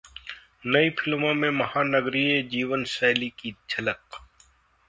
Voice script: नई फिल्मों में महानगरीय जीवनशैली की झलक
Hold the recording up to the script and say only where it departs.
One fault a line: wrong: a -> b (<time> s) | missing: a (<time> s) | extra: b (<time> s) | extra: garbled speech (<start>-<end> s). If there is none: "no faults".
no faults